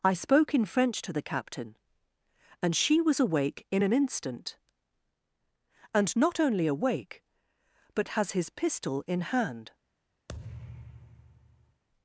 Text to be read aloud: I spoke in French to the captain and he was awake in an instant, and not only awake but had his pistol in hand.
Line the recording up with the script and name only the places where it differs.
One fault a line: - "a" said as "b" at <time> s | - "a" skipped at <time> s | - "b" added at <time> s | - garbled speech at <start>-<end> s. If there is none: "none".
- "he" said as "she" at 2.8 s
- "had" said as "has" at 8.1 s